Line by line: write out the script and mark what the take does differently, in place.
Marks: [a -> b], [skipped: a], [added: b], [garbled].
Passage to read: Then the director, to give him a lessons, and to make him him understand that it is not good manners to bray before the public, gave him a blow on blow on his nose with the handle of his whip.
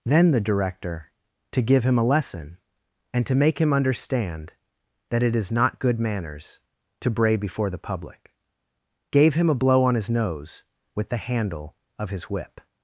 Then the director, to give him a [lessons, -> lesson] and to make him [skipped: him] understand that it is not good manners to bray before the public, gave him a blow on [skipped: blow on] his nose with the handle of his whip.